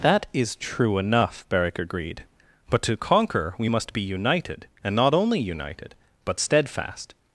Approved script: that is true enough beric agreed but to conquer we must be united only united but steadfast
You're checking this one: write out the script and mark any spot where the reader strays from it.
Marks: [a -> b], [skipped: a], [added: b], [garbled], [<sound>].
that is true enough beric agreed but to conquer we must be united [added: and not] only united but steadfast